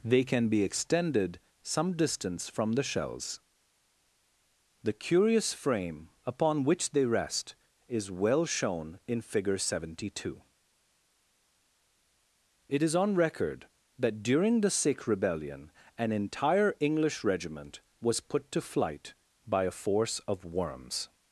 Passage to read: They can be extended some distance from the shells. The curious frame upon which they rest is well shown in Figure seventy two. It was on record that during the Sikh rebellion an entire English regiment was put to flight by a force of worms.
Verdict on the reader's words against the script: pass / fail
fail